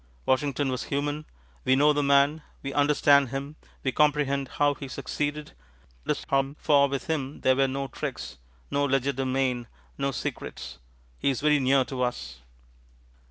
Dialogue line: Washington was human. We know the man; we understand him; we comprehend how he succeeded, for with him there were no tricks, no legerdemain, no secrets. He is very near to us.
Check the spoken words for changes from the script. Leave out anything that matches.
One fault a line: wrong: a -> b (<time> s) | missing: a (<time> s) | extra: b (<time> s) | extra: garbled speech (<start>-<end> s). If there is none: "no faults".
extra: garbled speech (6.1-6.6 s)